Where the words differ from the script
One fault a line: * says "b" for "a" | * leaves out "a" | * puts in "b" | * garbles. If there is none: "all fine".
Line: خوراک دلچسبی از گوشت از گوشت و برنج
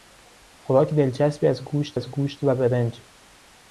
all fine